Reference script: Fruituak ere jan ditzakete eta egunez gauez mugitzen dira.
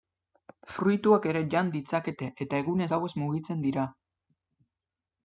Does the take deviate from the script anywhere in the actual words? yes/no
no